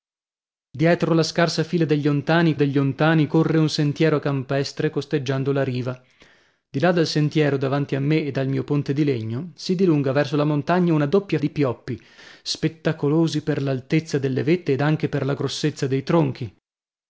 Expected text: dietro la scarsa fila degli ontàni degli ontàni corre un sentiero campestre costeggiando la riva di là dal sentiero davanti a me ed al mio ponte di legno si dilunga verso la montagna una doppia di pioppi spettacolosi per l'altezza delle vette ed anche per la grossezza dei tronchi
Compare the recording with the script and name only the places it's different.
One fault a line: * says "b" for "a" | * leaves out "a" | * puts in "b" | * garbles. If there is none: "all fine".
all fine